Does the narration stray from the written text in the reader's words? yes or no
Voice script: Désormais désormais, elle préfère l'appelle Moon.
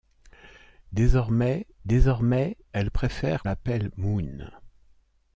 no